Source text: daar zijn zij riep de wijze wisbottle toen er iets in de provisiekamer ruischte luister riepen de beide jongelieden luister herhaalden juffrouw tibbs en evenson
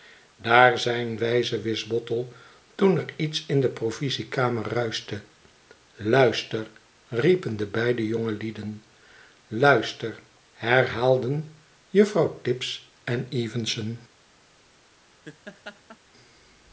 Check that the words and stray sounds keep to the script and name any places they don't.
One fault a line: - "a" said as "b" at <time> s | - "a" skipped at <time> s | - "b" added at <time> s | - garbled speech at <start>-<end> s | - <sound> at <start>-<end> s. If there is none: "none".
- "zij riep de" skipped at 1.2 s
- laugh at 15.2-16.0 s